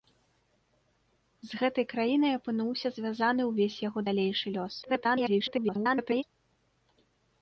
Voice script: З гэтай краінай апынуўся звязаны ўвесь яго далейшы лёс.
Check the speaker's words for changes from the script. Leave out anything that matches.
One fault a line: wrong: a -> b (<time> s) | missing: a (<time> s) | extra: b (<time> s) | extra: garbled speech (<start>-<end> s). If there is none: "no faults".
extra: garbled speech (4.8-6.2 s)